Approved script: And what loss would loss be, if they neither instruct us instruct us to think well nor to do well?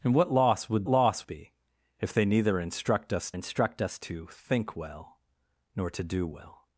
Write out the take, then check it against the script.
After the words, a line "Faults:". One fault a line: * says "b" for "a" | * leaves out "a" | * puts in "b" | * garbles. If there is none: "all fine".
And what loss would loss be, if they neither instruct us instruct us to think well nor to do well?
Faults:
all fine